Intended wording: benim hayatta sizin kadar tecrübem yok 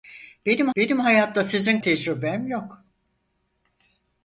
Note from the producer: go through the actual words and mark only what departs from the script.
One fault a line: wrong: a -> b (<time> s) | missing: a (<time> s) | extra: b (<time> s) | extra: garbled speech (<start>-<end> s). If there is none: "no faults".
extra: benim (0.8 s)
missing: kadar (1.8 s)